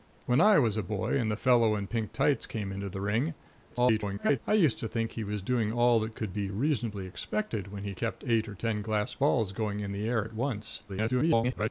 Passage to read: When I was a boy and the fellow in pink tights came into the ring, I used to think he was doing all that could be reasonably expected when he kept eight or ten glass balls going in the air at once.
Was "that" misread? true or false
false